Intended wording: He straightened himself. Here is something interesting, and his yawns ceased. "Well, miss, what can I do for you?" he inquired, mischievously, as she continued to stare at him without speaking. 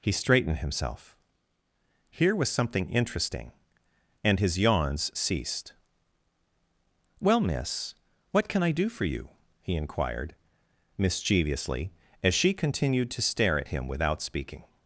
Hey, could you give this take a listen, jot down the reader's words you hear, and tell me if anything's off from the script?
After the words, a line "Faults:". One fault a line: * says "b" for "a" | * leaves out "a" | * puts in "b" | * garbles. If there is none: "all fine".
He straightened himself. Here was something interesting, and his yawns ceased. "Well, miss, what can I do for you?" he inquired, mischievously, as she continued to stare at him without speaking.
Faults:
* says "was" for "is"